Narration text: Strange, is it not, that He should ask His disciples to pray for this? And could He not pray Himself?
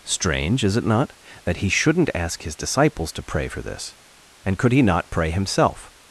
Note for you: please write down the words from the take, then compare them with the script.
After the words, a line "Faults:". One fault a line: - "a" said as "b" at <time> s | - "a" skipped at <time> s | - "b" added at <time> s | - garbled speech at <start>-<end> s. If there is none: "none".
Strange, is it not, that He shouldn't ask His disciples to pray for this? And could He not pray Himself?
Faults:
- "should" said as "shouldn't" at 1.7 s